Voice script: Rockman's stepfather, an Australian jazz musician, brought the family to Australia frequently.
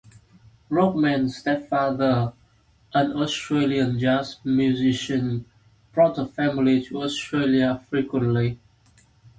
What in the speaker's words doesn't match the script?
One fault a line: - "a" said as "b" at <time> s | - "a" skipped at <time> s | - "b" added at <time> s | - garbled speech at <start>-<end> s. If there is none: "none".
none